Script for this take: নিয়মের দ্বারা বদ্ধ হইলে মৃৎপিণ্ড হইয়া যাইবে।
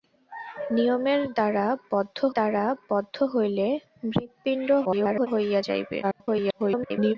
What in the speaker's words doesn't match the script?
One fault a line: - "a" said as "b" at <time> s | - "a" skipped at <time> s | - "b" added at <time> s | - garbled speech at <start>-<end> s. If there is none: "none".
- "দ্বারা বদ্ধ" added at 2.3 s
- garbled speech at 4.8-5.3 s
- garbled speech at 6.0-7.2 s